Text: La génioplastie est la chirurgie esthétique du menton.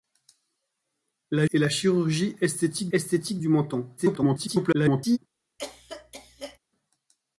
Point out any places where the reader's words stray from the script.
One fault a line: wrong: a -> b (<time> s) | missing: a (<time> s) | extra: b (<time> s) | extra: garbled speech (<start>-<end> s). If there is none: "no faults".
missing: génioplastie (1.4 s)
extra: esthétique (2.9 s)
extra: garbled speech (4.0-5.2 s)